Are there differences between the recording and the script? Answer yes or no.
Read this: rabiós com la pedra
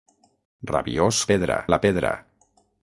yes